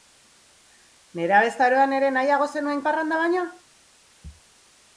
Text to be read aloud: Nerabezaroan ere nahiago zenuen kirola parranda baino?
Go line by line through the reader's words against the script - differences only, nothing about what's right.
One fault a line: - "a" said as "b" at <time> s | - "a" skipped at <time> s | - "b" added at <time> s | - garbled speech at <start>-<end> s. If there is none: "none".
- "kirola" skipped at 2.8 s